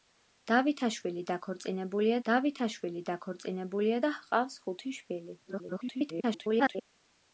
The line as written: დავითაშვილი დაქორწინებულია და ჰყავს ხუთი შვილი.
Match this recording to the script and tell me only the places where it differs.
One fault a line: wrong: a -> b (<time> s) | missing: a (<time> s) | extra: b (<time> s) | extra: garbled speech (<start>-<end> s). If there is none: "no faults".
extra: დავითაშვილი დაქორწინებულია (2.3 s)
extra: garbled speech (5.5-6.9 s)